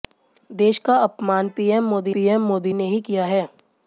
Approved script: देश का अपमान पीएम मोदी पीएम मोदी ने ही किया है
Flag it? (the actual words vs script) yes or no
no